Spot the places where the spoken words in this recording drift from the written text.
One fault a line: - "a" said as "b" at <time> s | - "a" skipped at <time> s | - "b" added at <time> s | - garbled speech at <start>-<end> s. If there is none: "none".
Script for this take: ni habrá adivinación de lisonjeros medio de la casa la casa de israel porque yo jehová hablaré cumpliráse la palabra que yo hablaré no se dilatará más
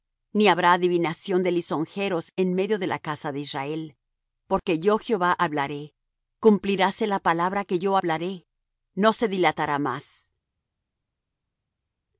- "en" added at 2.4 s
- "la casa" skipped at 3.3 s